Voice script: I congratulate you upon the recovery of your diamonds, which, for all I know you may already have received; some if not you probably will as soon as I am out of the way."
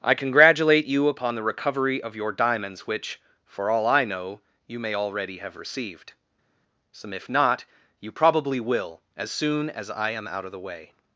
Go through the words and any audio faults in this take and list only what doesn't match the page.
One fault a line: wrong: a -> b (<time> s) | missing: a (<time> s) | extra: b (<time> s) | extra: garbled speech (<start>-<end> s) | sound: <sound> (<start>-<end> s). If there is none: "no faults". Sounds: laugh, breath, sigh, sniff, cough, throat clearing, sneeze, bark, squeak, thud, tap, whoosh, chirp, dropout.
no faults